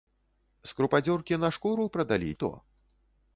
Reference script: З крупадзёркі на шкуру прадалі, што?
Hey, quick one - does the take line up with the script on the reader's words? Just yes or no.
yes